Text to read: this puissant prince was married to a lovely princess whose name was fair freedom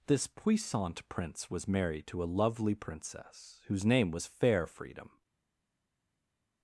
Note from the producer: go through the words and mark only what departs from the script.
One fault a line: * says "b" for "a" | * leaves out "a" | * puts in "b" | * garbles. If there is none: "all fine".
all fine